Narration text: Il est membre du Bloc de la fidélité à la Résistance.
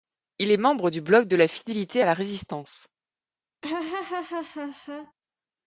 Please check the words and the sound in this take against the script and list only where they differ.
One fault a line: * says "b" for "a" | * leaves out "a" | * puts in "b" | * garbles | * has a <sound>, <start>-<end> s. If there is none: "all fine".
* has a laugh, 3.6-5.1 s